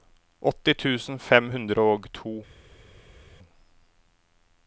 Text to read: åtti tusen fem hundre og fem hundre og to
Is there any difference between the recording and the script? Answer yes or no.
yes